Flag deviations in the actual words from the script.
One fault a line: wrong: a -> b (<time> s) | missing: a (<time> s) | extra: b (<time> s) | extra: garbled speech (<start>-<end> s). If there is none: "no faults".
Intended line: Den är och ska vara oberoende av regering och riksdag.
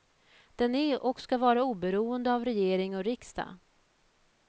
no faults